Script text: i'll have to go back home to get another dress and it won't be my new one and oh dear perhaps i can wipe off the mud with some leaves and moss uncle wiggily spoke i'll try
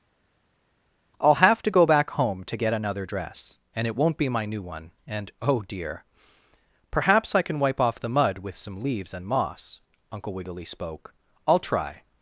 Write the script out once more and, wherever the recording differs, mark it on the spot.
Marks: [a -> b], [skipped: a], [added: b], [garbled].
i'll have to go back home to get another dress and it won't be my new one and oh dear perhaps i can wipe off the mud with some leaves and moss uncle wiggily spoke i'll try